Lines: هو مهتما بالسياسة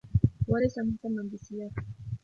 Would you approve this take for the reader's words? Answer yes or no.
no